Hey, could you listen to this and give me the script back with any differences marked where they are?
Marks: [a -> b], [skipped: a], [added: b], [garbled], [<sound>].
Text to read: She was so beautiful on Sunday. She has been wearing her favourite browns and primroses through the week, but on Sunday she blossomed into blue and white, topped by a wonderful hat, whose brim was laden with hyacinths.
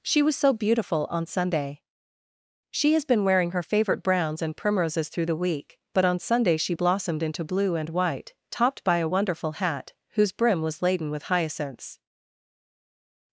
She was so beautiful on Sunday. She has been wearing her favourite browns and primroses through the week, but on Sunday she blossomed into blue and white, topped by a wonderful hat, whose brim was laden with hyacinths.